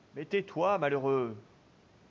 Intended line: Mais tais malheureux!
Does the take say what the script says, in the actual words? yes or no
no